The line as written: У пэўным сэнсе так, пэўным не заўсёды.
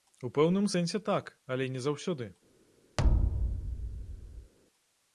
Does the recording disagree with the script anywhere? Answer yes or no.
yes